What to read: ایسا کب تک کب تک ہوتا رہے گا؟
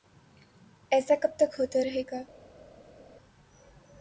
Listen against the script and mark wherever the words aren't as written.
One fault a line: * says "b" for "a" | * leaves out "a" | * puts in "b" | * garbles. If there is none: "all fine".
* leaves out "کب تک"